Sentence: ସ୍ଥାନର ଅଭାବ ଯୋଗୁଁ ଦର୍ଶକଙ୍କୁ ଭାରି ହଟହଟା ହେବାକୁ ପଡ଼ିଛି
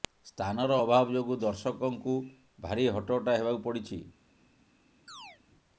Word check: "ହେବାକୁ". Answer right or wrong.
right